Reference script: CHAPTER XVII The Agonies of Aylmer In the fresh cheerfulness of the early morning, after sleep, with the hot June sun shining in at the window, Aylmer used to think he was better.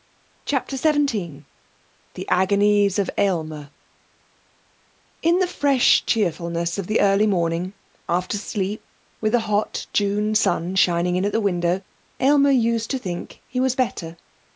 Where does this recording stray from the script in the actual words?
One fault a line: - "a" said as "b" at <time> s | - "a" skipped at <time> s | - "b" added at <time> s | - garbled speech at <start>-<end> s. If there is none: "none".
none